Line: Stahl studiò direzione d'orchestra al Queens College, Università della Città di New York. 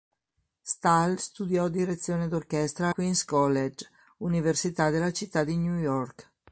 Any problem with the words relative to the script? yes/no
yes